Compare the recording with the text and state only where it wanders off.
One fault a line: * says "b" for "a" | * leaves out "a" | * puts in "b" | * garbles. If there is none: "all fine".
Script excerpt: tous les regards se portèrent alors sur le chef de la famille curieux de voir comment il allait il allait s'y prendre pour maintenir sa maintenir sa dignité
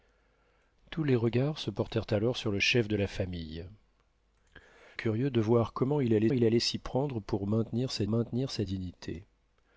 all fine